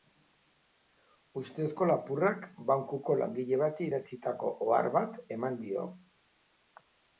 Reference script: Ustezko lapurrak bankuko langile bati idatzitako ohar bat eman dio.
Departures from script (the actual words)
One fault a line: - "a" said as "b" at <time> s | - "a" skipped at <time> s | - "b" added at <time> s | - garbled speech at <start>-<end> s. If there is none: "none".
none